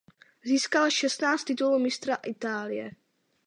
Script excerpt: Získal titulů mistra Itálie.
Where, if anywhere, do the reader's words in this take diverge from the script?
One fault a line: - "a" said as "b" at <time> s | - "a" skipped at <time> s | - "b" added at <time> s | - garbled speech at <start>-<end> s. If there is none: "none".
- "šestnáct" added at 0.9 s